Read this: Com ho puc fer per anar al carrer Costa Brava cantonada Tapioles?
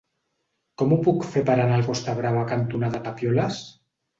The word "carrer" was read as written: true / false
false